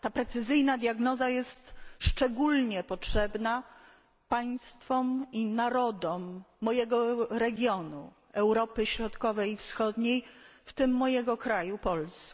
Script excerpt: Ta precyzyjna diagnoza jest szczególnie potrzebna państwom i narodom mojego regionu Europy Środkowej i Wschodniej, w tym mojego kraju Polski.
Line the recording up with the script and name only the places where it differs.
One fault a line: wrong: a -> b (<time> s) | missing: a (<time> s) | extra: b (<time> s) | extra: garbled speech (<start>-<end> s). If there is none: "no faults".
no faults